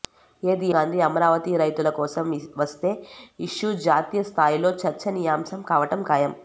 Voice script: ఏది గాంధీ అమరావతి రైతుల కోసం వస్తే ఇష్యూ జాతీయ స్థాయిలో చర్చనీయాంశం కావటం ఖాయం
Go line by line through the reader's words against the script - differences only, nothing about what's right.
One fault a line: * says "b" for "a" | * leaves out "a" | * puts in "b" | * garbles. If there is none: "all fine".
all fine